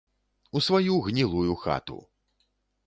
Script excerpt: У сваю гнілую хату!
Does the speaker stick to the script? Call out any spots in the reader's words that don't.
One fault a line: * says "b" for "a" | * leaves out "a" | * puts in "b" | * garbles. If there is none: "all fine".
all fine